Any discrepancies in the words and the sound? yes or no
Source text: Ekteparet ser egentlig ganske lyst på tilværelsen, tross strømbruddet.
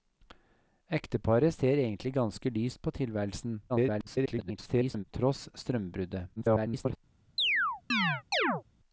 yes